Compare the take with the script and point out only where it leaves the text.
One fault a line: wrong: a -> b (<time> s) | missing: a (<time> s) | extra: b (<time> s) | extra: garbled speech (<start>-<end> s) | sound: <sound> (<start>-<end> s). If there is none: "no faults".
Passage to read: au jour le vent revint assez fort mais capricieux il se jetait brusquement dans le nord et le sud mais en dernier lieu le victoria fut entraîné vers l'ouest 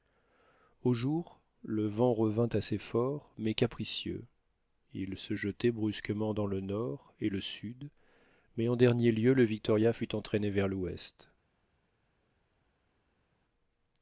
no faults